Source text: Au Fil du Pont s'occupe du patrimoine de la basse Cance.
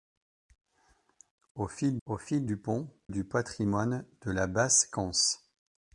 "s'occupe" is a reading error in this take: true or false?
true